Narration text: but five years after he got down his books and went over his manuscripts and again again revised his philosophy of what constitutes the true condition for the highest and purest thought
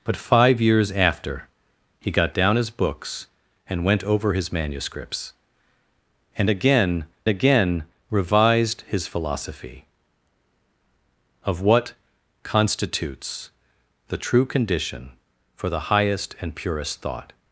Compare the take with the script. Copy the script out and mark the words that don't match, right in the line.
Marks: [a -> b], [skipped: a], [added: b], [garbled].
but five years after he got down his books and went over his manuscripts and again again revised his philosophy of what constitutes the true condition for the highest and purest thought